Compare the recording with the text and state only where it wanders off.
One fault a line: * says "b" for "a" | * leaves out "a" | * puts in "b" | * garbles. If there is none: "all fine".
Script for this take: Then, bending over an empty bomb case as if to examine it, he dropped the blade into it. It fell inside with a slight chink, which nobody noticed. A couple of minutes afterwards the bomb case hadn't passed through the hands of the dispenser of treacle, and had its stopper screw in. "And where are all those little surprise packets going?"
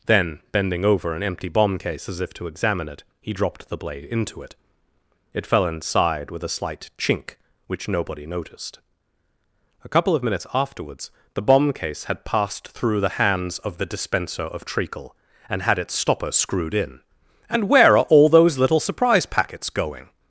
* says "had" for "hadn't"
* says "screwed" for "screw"